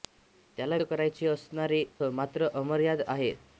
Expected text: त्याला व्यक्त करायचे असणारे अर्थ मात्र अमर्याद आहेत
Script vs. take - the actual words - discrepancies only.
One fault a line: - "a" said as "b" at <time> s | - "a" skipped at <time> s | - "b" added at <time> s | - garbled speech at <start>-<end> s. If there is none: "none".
- "व्यक्त" skipped at 0.8 s
- "अर्थ" skipped at 1.8 s